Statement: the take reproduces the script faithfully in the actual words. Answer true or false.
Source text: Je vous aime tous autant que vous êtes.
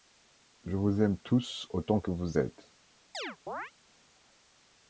true